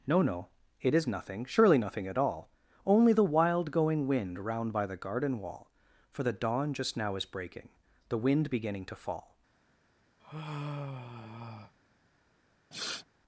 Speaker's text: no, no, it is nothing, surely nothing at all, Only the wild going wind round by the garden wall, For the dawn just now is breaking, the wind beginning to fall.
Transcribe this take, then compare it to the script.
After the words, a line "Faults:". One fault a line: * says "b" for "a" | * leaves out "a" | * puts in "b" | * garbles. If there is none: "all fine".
no, no, it is nothing, surely nothing at all, Only the wild going wind round by the garden wall, For the dawn just now is breaking, the wind beginning to fall.
Faults:
all fine